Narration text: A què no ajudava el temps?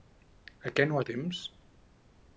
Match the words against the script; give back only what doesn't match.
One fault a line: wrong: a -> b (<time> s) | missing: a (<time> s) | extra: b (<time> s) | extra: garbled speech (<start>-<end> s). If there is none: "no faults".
missing: ajudava (1.0 s)